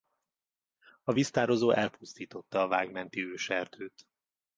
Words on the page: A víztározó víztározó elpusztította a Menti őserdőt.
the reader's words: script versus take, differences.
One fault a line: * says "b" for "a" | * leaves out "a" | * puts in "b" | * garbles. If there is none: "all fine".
* leaves out "víztározó"
* puts in "Vág"